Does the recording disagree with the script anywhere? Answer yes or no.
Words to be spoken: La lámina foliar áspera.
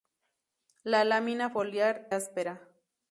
no